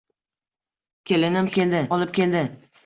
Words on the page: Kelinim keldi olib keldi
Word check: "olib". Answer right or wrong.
right